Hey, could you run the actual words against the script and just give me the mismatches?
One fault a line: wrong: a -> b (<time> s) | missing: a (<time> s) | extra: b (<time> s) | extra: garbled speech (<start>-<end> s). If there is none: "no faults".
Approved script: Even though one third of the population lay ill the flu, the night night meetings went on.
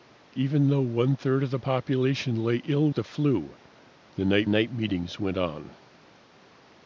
no faults